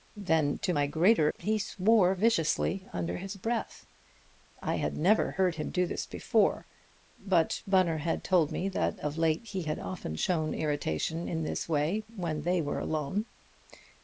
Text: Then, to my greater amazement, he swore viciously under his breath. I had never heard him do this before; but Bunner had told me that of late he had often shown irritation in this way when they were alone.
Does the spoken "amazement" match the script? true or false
false